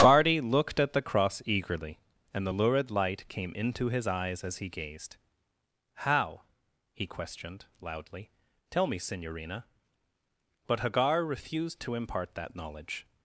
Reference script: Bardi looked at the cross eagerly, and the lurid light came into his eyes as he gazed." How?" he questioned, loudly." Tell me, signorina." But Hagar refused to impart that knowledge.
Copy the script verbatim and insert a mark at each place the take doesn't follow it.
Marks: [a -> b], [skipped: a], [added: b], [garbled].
Bardi looked at the cross eagerly, and the lurid light came into his eyes as he gazed." How?" he questioned, loudly." Tell me, signorina." But Hagar refused to impart that knowledge.